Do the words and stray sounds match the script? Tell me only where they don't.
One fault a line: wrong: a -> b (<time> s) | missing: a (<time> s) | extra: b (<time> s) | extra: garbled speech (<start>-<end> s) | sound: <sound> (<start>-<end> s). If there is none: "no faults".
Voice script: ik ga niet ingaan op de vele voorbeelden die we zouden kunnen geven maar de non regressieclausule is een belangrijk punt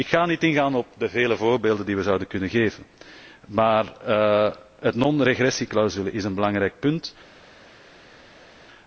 no faults